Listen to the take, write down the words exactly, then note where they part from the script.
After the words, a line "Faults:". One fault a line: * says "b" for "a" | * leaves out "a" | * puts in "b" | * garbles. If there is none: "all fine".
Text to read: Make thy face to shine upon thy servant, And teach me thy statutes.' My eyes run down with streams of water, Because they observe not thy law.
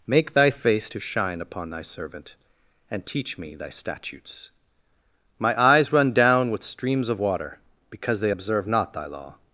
Make thy face to shine upon thy servant, And teach me thy statutes.' My eyes run down with streams of water, Because they observe not thy law.
Faults:
all fine